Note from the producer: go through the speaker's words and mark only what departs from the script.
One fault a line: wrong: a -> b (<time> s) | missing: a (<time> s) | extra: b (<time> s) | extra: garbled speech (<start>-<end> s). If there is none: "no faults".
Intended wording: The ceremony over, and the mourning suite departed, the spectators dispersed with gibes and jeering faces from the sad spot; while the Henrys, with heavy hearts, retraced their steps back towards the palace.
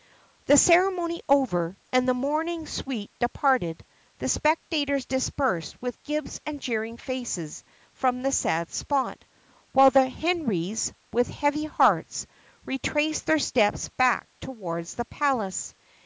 no faults